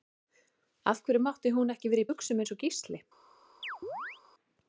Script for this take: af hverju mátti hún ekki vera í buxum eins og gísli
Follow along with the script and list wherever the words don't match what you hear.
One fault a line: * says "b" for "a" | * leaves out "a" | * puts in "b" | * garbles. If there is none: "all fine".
all fine